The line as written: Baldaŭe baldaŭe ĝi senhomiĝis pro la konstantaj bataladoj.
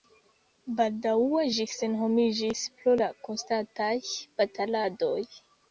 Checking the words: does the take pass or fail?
fail